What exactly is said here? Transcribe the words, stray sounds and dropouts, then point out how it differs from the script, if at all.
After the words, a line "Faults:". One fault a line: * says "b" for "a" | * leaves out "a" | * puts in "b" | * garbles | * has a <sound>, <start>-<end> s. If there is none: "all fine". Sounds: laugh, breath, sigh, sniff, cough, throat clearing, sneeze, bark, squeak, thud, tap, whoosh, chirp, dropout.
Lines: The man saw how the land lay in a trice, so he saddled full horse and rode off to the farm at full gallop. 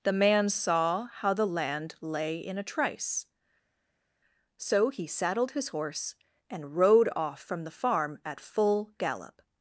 The man saw how the land lay in a trice, so he saddled his horse and rode off from the farm at full gallop.
Faults:
* says "his" for "full"
* says "from" for "to"